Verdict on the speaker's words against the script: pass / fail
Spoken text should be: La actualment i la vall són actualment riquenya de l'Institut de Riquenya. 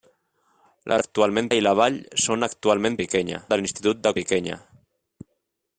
pass